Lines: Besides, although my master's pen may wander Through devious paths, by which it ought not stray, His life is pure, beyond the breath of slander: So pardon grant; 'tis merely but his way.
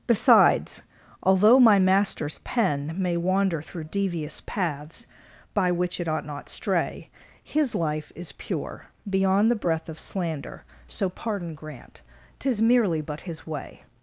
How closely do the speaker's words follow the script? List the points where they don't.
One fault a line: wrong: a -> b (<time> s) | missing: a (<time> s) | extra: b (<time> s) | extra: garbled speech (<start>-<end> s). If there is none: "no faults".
no faults